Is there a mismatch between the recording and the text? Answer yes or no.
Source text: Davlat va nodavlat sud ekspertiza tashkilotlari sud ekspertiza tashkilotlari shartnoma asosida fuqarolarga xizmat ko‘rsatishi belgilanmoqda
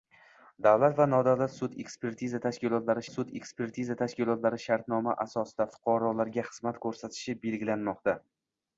no